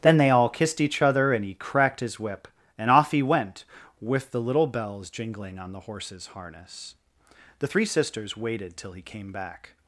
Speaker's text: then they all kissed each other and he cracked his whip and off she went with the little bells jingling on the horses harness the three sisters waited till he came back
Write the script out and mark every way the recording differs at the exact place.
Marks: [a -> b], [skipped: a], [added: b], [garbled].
then they all kissed each other and he cracked his whip and off [she -> he] went with the little bells jingling on the horses harness the three sisters waited till he came back